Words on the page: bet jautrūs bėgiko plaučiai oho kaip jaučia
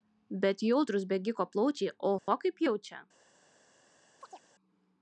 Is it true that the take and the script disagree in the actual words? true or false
false